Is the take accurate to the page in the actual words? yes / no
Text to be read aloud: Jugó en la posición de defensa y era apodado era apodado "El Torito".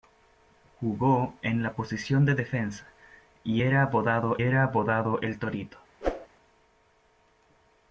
yes